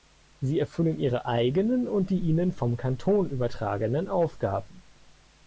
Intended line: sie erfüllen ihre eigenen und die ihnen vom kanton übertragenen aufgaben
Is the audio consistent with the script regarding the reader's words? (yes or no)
yes